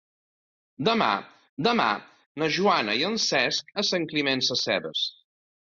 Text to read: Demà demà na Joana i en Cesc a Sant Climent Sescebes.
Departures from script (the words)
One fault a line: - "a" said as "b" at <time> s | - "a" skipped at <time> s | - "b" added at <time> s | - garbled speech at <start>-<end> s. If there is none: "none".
none